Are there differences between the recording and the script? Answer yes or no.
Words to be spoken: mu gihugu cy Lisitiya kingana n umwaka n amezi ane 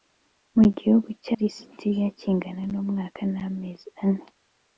no